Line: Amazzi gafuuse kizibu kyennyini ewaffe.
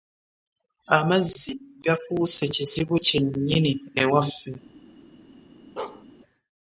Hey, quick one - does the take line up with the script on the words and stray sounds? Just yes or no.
no